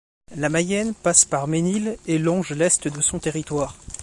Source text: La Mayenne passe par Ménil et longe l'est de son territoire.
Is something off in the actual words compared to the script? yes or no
no